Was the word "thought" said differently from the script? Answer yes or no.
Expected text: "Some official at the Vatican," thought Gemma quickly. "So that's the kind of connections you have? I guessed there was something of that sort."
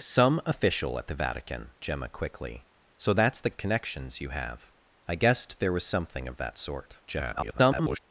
yes